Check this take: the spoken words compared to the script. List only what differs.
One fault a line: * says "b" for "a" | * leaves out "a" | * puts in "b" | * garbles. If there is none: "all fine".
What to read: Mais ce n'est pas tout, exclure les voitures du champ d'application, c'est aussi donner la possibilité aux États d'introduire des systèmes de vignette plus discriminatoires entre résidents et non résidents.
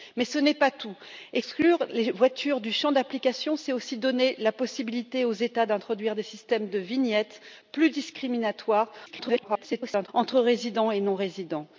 * garbles